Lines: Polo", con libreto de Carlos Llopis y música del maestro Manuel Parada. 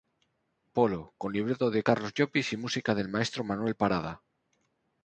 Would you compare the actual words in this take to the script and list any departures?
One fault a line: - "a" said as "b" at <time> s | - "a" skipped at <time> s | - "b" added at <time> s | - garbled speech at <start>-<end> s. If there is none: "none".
none